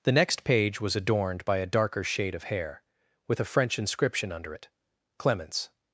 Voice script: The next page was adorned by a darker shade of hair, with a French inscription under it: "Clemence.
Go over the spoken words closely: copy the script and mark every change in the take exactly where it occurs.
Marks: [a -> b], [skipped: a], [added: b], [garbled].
The next page was adorned by a darker shade of hair, with a French inscription under it: "Clemence.